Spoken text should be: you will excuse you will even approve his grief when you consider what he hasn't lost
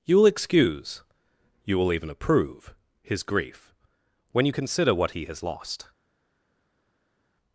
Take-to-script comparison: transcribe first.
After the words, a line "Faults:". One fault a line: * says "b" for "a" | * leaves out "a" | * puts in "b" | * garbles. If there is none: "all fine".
you will excuse you will even approve his grief when you consider what he has lost
Faults:
* says "has" for "hasn't"